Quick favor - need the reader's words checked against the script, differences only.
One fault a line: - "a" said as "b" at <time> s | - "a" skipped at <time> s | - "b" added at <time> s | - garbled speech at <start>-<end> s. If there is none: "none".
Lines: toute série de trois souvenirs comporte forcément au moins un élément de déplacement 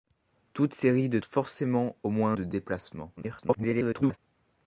- "trois souvenirs comporte" skipped at 1.2 s
- "un élément" skipped at 2.3 s
- garbled speech at 3.2-4.2 s